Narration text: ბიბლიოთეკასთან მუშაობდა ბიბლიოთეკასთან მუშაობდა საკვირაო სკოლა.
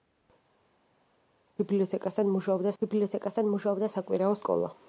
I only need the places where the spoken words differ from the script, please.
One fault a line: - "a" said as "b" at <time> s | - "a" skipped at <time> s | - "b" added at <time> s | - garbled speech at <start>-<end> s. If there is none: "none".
none